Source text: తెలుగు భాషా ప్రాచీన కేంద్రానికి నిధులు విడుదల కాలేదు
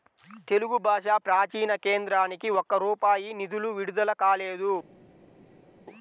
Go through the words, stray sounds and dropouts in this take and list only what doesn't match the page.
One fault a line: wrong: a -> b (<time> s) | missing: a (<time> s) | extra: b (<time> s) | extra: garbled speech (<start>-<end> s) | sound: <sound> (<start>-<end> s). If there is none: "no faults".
extra: ఒక్క రూపాయి (2.5 s)